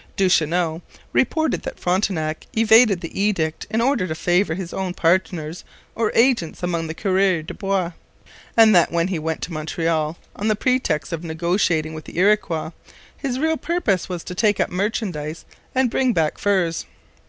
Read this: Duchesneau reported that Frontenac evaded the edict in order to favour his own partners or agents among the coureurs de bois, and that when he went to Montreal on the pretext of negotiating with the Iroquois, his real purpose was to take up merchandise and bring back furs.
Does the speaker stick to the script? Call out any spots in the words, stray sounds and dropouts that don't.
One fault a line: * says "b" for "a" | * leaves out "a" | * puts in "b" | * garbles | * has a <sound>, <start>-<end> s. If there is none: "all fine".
all fine